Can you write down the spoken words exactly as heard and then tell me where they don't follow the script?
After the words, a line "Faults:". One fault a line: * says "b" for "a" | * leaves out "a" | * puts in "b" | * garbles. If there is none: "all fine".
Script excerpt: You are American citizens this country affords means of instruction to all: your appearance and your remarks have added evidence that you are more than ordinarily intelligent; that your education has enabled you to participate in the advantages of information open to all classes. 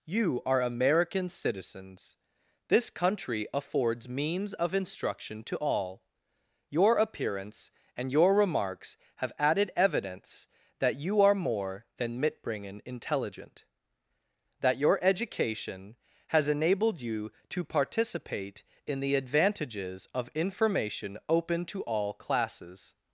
You are American citizens this country affords means of instruction to all: your appearance and your remarks have added evidence that you are more than mitbringen intelligent; that your education has enabled you to participate in the advantages of information open to all classes.
Faults:
* says "mitbringen" for "ordinarily"